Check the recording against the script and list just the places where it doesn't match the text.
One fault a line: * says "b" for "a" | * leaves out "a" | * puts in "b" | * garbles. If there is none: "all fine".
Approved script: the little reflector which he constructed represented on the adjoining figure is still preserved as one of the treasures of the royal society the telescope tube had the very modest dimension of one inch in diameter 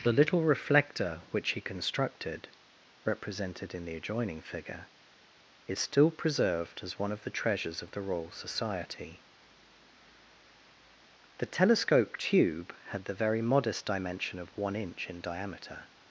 * says "in" for "on"